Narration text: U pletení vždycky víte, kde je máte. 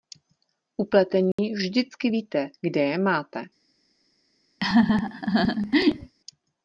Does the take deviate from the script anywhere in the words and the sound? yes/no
yes